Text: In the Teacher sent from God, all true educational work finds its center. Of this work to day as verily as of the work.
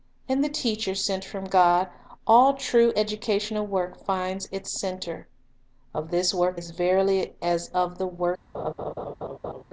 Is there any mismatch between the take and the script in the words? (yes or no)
yes